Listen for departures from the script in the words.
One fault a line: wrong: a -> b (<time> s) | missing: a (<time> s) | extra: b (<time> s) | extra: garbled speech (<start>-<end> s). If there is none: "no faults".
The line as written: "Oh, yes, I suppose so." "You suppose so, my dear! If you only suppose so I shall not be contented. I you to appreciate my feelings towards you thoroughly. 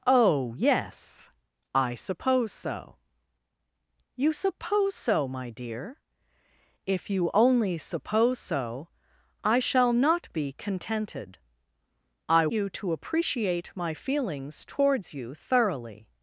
no faults